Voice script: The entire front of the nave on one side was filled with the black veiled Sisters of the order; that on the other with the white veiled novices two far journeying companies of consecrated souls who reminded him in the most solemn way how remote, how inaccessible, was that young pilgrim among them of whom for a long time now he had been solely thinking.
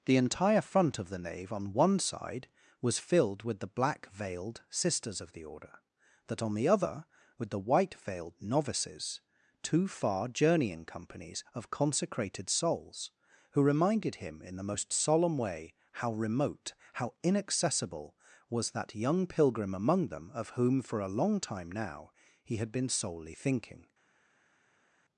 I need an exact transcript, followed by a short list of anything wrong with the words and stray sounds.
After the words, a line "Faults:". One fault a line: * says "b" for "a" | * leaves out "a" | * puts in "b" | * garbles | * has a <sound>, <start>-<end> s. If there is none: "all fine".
The entire front of the nave on one side was filled with the black veiled Sisters of the order; that on the other with the white veiled novices two far journeying companies of consecrated souls who reminded him in the most solemn way how remote, how inaccessible, was that young pilgrim among them of whom for a long time now he had been solely thinking.
Faults:
all fine